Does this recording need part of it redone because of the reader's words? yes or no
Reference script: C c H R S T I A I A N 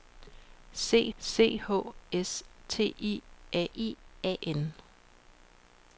no